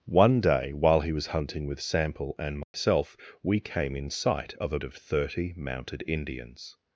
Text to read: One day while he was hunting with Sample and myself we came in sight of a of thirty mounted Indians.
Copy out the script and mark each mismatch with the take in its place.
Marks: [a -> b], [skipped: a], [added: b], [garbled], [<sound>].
One day while he was hunting with Sample and myself [dropout] we came in sight of a of thirty mounted Indians.